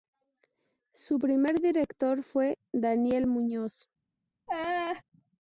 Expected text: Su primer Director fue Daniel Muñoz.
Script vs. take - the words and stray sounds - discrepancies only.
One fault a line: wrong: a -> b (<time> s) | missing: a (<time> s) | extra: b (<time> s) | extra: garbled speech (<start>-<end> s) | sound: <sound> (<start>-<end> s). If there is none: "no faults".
sound: laugh (4.5-5.0 s)